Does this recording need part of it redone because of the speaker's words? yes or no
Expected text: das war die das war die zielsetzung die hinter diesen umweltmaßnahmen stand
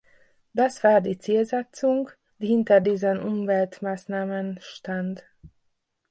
yes